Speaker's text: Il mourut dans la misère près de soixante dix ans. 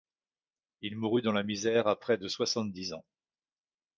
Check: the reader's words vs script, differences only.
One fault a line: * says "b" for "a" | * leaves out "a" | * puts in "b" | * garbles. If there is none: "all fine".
* puts in "à"